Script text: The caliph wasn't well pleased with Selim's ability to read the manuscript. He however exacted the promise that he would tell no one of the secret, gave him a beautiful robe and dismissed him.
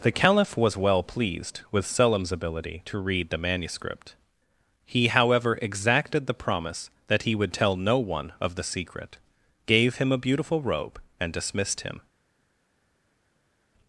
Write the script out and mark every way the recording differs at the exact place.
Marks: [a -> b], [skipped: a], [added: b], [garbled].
The caliph [wasn't -> was] well pleased with Selim's ability to read the manuscript. He however exacted the promise that he would tell no one of the secret, gave him a beautiful robe and dismissed him.